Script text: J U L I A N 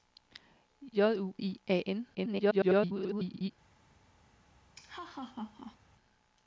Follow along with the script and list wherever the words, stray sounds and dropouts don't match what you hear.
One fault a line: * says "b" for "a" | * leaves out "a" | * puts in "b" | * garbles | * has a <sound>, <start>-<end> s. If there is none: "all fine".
* leaves out "L"
* garbles
* has a laugh, 4.7-5.8 s